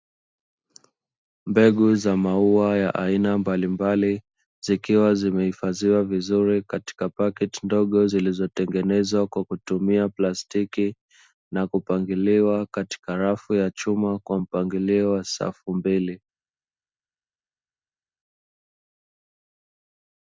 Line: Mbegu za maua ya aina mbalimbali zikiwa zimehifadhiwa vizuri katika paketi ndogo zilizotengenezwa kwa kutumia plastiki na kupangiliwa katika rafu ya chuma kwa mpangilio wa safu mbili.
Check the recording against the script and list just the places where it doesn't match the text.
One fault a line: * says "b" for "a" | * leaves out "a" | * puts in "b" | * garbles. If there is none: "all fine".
all fine